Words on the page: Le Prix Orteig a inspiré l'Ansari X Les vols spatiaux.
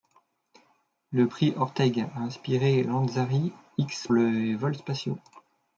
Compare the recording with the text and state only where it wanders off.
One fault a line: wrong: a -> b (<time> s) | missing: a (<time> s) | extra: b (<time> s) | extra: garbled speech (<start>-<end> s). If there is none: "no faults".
no faults